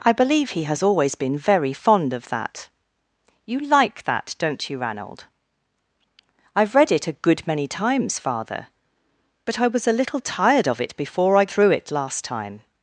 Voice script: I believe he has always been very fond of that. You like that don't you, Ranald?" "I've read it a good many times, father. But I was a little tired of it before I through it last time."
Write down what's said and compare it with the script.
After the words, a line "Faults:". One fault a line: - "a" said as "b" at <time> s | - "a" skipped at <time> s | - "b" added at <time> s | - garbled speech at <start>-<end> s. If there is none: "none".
I believe he has always been very fond of that. You like that don't you, Ranald?" "I've read it a good many times, father. But I was a little tired of it before I through it last time."
Faults:
none